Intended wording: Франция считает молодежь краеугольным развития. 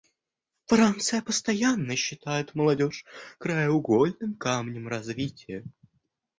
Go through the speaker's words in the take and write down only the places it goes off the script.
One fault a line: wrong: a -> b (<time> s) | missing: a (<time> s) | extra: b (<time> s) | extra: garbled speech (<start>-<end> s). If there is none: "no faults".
extra: постоянно (1.2 s)
extra: камнем (4.3 s)